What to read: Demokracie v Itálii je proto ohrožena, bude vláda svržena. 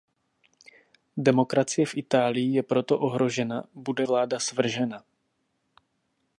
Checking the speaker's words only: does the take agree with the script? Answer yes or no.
yes